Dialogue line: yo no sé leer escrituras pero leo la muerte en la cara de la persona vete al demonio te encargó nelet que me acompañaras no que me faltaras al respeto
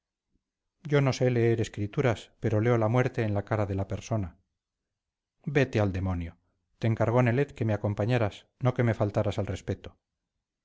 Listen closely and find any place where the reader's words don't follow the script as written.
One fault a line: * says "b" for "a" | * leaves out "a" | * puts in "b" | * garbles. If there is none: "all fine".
all fine